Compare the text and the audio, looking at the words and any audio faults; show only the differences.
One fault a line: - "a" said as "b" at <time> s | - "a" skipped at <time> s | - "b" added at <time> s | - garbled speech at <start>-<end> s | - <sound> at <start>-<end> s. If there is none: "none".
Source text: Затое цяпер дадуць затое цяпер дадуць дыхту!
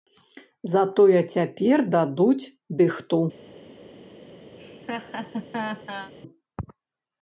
- "затое цяпер дадуць" skipped at 2.5 s
- laugh at 4.6-6.1 s